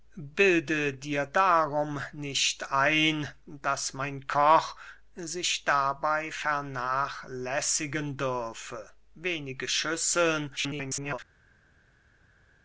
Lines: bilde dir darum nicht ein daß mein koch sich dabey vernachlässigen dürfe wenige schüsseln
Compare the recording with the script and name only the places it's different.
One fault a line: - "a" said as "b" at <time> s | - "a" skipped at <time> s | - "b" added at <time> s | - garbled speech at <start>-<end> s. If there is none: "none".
- garbled speech at 10.6-11.2 s